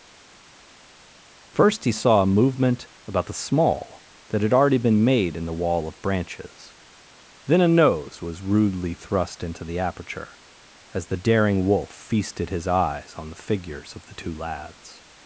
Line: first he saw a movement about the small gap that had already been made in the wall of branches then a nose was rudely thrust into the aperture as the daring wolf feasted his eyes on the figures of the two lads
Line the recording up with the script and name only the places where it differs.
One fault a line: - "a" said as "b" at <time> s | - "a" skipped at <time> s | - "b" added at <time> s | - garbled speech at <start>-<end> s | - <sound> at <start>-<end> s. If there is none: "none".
- "gap" skipped at 4.1 s